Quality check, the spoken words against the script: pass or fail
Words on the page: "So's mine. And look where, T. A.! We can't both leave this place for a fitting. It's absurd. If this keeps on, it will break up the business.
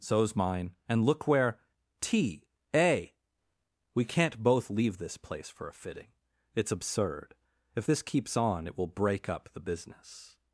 pass